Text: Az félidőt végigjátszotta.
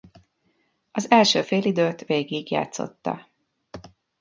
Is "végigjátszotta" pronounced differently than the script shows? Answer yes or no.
no